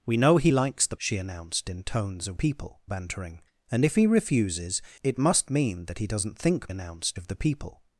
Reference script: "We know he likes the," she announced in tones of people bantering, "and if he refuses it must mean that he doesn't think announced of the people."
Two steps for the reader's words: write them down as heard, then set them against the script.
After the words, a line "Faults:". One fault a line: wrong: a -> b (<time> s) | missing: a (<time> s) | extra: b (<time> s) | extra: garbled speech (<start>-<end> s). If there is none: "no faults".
"We know he likes the," she announced in tones of people bantering, "and if he refuses it must mean that he doesn't think announced of the people."
Faults:
no faults